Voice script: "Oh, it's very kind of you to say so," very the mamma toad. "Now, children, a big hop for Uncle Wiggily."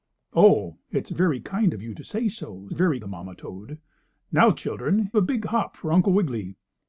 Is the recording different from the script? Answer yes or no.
no